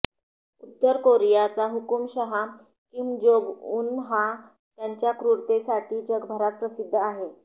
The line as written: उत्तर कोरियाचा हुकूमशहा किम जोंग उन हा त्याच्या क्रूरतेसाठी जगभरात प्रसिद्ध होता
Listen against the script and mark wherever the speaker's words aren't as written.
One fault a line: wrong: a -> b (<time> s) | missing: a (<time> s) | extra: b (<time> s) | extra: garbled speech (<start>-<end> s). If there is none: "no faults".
wrong: होता -> आहे (7.0 s)